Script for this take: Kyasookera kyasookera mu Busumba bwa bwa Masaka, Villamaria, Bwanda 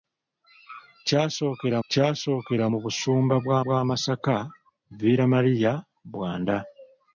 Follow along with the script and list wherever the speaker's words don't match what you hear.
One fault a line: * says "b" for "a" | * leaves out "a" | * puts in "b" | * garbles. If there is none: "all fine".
all fine